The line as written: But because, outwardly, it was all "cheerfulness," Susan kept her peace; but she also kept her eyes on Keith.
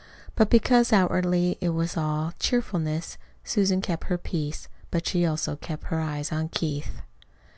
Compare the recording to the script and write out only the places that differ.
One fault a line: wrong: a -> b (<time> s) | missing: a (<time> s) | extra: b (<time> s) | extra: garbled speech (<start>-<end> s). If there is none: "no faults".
no faults